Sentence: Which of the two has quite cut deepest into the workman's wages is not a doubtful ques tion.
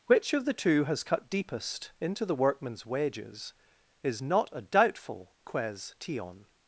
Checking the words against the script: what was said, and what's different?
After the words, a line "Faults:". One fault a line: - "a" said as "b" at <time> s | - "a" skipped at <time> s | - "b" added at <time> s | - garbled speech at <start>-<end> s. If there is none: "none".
Which of the two has cut deepest into the workman's wages is not a doubtful ques tion.
Faults:
- "quite" skipped at 1.0 s